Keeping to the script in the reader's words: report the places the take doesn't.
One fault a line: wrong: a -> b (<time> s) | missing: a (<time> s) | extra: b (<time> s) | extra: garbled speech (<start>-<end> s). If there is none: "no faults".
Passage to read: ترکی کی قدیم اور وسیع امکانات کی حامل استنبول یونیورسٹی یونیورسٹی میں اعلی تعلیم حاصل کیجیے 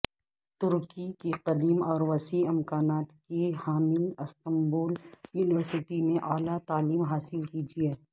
missing: یونیورسٹی (6.0 s)